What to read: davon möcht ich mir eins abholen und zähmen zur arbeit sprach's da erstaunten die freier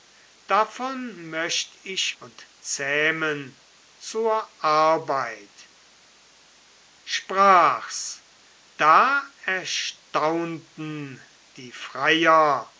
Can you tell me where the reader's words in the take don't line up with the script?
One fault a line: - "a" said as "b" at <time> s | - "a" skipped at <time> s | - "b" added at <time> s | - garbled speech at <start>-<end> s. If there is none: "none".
- "mir eins abholen" skipped at 2.1 s